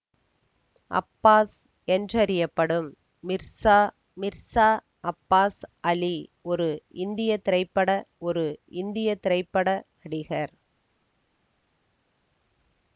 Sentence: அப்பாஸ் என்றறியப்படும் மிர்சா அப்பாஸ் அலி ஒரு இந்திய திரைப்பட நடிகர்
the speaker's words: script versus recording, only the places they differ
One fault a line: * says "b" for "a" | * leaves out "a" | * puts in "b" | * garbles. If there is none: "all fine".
* puts in "மிர்சா"
* puts in "ஒரு இந்திய திரைப்பட"